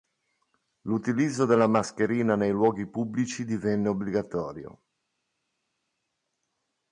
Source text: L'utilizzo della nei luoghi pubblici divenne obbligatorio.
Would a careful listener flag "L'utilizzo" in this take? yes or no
no